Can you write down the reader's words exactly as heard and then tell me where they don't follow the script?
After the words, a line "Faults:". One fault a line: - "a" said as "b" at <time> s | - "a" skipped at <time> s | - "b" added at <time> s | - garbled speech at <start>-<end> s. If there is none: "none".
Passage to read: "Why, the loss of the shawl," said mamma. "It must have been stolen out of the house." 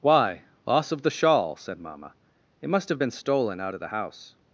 "Why, loss of the shawl," said mamma. "It must have been stolen out of the house."
Faults:
- "the" skipped at 0.4 s